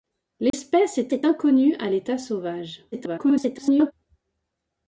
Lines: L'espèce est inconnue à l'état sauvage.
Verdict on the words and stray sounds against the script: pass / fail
fail